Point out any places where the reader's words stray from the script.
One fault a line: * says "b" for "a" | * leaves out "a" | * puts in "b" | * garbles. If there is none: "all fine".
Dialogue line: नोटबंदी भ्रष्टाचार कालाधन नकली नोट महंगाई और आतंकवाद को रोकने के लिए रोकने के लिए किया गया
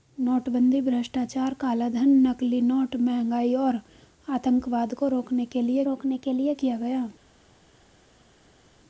all fine